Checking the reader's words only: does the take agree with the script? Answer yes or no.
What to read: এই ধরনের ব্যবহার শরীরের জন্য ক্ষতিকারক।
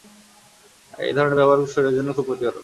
no